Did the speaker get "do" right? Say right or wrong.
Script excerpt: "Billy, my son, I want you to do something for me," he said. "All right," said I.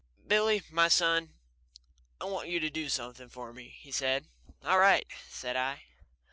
right